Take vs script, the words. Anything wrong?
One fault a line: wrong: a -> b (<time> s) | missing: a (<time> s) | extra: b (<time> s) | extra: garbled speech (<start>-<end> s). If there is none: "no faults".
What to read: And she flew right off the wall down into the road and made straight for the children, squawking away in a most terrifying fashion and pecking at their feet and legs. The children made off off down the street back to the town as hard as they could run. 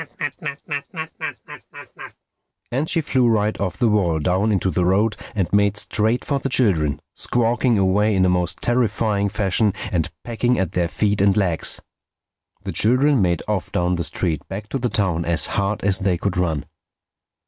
missing: off (13.7 s)